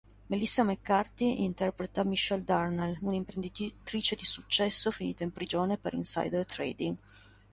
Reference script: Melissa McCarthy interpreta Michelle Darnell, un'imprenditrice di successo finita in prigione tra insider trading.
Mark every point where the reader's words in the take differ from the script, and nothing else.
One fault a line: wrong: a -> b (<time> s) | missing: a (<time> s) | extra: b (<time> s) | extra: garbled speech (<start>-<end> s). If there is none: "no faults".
wrong: tra -> per (5.8 s)